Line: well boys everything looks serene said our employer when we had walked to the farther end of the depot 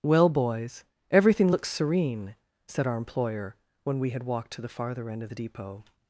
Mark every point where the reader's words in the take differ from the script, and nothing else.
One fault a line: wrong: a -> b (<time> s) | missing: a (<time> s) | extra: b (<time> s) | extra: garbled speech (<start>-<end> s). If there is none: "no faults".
no faults